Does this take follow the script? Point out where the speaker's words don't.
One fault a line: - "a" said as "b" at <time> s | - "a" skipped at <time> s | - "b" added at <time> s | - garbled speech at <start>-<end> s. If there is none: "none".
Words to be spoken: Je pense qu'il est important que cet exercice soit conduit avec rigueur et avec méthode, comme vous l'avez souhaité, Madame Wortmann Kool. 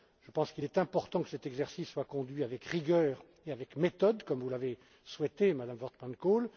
none